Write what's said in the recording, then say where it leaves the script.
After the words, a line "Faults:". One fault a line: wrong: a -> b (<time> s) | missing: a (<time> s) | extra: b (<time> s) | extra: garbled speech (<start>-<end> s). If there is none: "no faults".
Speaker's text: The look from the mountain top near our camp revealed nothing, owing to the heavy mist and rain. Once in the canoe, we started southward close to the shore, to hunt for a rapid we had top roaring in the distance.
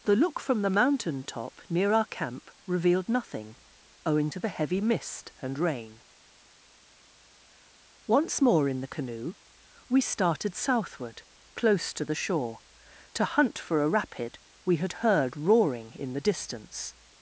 The look from the mountain top near our camp revealed nothing, owing to the heavy mist and rain. Once more in the canoe, we started southward close to the shore, to hunt for a rapid we had heard roaring in the distance.
Faults:
extra: more (8.4 s)
wrong: top -> heard (15.0 s)